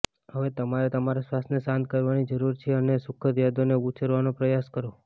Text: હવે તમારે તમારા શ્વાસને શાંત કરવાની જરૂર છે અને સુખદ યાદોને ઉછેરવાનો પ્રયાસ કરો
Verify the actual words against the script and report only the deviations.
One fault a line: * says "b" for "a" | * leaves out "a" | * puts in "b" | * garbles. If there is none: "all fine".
all fine